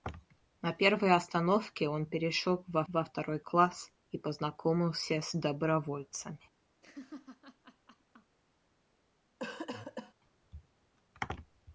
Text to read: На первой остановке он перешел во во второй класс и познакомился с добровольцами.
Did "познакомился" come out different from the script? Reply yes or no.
no